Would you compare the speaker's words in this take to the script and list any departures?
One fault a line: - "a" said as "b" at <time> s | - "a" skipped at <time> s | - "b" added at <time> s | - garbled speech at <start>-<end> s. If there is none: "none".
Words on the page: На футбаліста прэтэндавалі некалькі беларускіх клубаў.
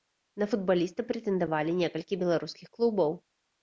none